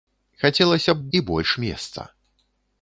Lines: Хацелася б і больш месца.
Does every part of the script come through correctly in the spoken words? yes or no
yes